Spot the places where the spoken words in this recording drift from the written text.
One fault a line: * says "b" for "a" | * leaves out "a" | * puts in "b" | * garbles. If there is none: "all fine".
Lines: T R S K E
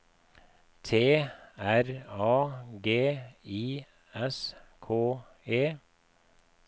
* puts in "A G I"